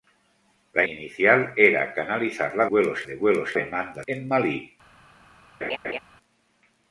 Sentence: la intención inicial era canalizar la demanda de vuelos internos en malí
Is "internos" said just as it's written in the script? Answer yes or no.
no